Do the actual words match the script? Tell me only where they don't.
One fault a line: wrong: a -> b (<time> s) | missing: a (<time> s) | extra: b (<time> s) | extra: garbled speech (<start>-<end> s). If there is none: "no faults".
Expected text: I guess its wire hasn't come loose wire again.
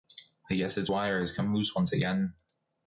wrong: hasn't -> has (1.2 s)
wrong: wire -> once (1.7 s)